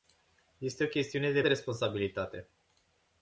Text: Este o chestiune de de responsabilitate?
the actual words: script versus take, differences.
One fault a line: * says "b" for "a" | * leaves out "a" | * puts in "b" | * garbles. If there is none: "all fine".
all fine